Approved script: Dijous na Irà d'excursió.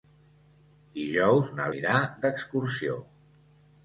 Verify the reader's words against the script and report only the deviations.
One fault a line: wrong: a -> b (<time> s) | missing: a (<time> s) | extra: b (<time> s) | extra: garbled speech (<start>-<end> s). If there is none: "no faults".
no faults